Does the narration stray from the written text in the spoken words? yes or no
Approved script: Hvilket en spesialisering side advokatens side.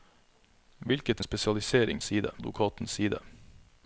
no